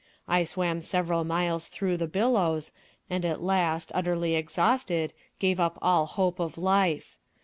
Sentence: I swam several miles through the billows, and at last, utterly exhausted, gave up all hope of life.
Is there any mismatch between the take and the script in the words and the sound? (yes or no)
no